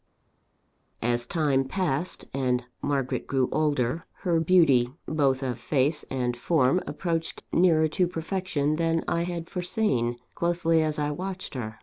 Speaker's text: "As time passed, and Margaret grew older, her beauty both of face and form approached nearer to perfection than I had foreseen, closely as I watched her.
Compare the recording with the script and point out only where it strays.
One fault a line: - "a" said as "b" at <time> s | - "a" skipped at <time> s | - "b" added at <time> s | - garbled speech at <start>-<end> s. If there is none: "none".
none